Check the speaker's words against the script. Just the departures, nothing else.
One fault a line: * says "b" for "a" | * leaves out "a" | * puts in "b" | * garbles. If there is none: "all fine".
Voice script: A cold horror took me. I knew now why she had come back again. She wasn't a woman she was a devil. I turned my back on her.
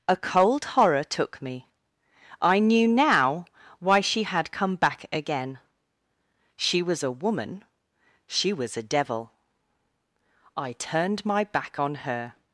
* says "was" for "wasn't"